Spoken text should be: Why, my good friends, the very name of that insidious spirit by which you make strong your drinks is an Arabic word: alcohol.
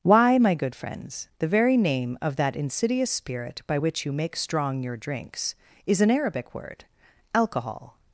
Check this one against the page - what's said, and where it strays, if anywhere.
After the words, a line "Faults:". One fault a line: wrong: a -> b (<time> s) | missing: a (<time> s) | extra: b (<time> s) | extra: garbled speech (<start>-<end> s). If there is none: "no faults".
Why, my good friends, the very name of that insidious spirit by which you make strong your drinks is an Arabic word: alcohol.
Faults:
no faults